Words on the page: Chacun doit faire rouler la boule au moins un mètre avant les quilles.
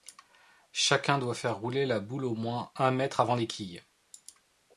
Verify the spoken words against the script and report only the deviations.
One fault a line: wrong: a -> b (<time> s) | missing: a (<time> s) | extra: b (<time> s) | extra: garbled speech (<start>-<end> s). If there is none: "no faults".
no faults